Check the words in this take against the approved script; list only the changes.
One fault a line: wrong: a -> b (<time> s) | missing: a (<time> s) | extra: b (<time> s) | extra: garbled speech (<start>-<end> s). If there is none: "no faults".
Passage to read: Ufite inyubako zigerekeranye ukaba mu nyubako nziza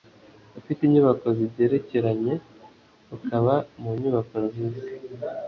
no faults